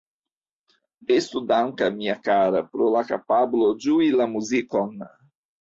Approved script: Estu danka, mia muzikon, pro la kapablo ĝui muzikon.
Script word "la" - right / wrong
right